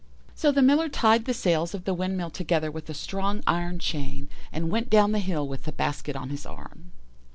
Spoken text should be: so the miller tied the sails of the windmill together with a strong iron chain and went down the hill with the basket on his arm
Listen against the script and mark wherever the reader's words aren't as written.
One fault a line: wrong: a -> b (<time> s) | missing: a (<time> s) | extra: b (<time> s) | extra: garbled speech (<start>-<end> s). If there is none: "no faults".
no faults